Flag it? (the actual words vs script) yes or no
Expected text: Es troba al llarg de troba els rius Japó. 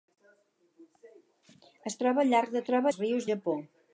no